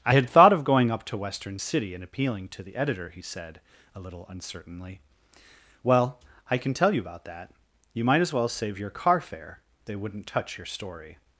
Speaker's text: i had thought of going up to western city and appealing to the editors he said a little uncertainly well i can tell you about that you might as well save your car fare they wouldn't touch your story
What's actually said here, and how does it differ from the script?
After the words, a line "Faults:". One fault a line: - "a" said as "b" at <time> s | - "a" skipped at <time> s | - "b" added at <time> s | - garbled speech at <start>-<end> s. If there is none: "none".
i had thought of going up to western city and appealing to the editor he said a little uncertainly well i can tell you about that you might as well save your car fare they wouldn't touch your story
Faults:
- "editors" said as "editor" at 2.8 s